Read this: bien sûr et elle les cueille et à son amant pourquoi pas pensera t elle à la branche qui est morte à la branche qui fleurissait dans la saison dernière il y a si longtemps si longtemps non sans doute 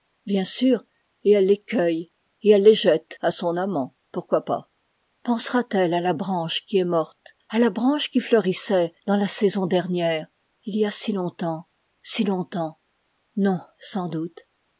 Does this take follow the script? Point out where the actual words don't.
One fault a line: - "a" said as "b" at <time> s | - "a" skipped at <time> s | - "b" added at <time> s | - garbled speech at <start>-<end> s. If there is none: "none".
- "elle les jette" added at 2.5 s